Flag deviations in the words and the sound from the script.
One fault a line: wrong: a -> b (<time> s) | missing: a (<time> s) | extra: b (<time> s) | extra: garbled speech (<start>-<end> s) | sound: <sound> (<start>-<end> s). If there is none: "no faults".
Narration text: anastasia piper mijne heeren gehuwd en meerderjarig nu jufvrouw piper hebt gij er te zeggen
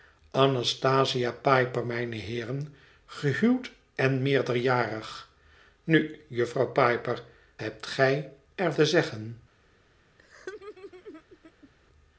sound: laugh (10.2-11.7 s)